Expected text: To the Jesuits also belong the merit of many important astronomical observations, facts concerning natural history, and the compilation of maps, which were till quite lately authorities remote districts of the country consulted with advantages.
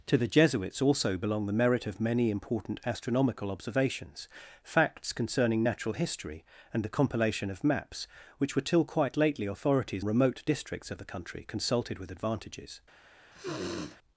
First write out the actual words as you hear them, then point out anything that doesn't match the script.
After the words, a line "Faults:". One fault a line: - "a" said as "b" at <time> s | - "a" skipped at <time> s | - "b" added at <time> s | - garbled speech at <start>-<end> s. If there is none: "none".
To the Jesuits also belong the merit of many important astronomical observations, facts concerning natural history, and the compilation of maps, which were till quite lately authorities remote districts of the country consulted with advantages.
Faults:
none